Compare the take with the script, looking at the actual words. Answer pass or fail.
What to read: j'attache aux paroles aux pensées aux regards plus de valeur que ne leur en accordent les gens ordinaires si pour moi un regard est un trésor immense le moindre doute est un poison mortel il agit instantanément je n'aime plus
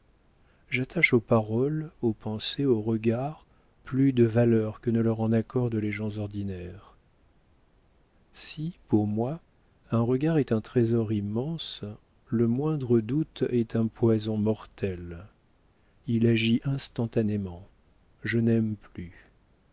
pass